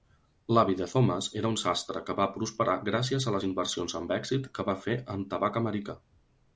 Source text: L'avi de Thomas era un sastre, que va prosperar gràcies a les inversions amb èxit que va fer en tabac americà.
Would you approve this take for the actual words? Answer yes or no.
yes